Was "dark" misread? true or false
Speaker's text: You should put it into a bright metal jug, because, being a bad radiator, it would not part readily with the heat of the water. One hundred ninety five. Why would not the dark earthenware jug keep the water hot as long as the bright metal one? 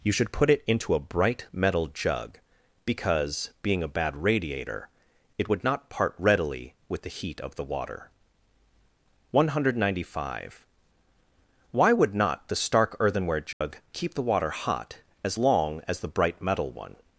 true